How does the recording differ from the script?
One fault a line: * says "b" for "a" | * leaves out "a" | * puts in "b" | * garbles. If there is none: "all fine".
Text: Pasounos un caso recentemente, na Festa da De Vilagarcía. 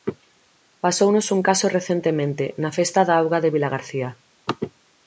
* puts in "Auga"